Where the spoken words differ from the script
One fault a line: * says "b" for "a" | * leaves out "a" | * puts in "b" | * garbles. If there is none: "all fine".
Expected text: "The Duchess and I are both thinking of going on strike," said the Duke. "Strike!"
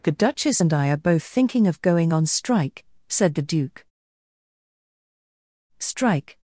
all fine